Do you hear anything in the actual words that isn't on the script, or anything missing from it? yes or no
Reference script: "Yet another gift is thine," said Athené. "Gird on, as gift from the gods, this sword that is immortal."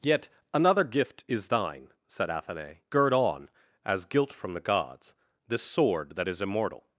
yes